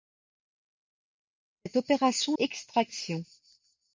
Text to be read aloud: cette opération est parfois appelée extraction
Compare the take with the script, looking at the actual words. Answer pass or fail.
fail